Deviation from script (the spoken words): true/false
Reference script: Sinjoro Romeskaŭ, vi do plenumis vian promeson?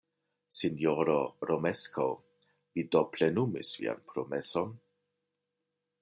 false